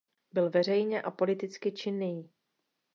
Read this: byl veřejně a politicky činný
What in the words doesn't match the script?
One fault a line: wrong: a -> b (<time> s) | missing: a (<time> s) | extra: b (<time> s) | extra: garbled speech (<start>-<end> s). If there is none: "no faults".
no faults